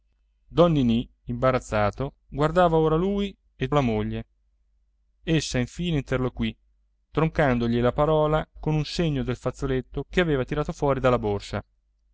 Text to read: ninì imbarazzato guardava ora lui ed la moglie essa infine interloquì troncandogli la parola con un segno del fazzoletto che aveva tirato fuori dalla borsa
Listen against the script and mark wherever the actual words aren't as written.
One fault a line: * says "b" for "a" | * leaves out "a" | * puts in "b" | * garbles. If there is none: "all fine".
all fine